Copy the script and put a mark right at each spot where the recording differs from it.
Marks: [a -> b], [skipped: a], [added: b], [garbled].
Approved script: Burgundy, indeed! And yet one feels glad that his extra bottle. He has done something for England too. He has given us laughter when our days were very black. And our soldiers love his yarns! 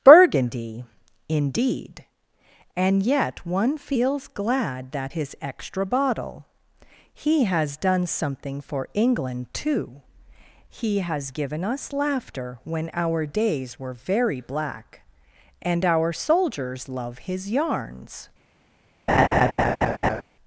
Burgundy, indeed! And yet one feels glad that his extra bottle. He has done something for England too. He has given us laughter when our days were very black. And our soldiers love his yarns!